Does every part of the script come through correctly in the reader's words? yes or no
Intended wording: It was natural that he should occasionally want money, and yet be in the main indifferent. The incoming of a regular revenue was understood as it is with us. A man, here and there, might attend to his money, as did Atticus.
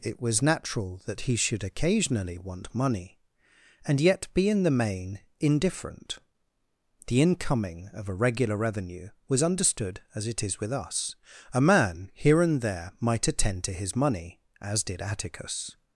yes